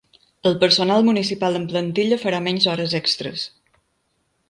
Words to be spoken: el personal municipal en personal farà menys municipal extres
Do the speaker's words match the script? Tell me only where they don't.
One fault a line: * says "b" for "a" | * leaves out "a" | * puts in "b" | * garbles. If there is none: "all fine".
* says "plantilla" for "personal"
* says "hores" for "municipal"